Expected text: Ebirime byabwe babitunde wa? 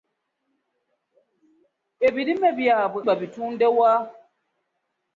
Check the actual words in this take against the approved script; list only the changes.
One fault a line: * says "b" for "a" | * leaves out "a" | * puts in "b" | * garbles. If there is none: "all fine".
all fine